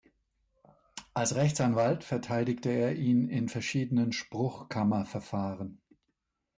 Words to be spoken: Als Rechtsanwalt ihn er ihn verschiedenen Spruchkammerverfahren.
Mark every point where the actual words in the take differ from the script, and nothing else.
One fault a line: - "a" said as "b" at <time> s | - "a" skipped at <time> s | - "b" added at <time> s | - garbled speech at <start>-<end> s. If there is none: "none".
- "ihn" said as "verteidigte" at 2.0 s
- "in" added at 3.2 s